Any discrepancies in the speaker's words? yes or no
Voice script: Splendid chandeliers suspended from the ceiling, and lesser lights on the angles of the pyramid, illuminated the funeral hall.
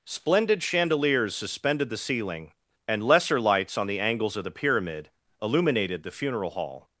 yes